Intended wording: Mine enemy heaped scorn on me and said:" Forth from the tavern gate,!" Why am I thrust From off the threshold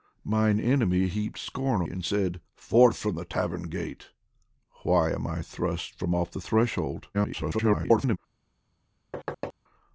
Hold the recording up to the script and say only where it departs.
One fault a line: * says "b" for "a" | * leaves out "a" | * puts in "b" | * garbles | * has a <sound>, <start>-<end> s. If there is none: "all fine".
* leaves out "on me"
* garbles
* has a thud, 9.1-9.5 s